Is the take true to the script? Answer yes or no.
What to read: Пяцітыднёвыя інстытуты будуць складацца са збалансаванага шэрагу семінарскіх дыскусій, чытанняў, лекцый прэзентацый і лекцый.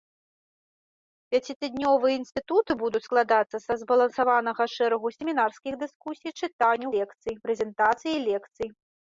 yes